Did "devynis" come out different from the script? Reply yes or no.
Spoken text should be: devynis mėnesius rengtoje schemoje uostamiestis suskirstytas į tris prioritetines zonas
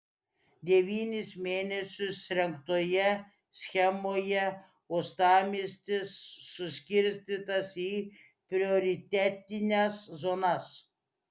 no